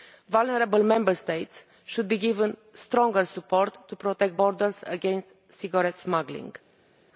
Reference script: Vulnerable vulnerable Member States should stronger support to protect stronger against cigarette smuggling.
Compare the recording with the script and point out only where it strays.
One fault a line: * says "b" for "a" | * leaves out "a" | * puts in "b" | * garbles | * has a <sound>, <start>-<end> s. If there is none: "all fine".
* leaves out "vulnerable"
* puts in "be given"
* says "borders" for "stronger"